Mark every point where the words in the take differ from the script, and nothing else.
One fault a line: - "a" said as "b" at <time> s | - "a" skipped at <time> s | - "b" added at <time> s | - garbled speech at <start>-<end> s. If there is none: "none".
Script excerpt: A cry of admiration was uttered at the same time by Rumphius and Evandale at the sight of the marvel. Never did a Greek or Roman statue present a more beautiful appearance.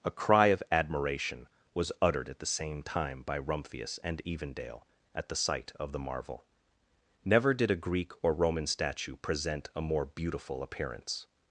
none